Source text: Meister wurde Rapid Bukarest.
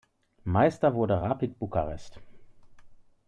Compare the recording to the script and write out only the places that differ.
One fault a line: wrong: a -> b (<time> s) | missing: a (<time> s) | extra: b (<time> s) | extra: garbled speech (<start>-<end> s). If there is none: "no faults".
no faults